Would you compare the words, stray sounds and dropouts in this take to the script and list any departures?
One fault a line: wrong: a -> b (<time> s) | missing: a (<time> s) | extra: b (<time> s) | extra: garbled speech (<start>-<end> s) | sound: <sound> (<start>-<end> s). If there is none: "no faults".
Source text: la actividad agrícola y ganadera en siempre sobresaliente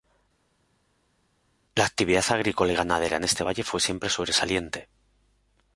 extra: este valle fue (3.2 s)